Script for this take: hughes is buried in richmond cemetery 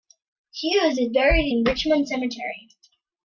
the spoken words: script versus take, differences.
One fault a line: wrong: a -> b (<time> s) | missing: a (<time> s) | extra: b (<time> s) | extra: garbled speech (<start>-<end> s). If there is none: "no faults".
no faults